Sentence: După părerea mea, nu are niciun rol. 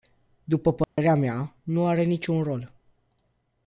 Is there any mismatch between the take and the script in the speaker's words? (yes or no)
no